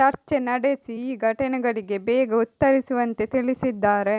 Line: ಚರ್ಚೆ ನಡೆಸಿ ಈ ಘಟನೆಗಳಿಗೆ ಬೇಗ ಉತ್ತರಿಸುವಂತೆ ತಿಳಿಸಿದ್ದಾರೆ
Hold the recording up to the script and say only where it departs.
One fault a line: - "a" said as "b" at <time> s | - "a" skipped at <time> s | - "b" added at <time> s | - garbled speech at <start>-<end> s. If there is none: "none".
none